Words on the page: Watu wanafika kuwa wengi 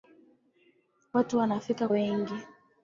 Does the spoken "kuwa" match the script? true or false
false